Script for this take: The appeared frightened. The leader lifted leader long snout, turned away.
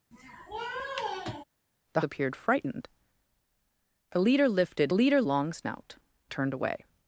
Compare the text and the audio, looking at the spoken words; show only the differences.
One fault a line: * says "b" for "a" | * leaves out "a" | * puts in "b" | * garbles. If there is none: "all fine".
all fine